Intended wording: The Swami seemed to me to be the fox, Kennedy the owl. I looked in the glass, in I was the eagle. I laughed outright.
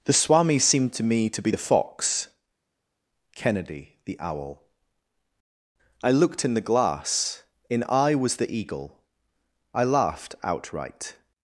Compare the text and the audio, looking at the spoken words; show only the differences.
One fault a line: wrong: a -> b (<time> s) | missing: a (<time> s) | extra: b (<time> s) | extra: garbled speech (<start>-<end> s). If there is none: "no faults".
no faults